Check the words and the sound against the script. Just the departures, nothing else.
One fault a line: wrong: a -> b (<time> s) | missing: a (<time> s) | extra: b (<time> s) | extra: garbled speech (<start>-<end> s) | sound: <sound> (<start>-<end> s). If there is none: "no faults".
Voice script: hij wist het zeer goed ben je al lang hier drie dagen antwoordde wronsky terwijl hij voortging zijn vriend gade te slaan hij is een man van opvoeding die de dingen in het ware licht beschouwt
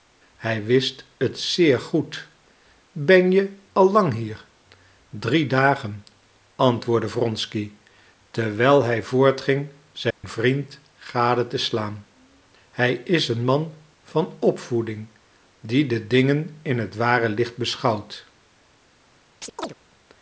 sound: dropout (10.1-10.2 s)
sound: chirp (19.4-19.7 s)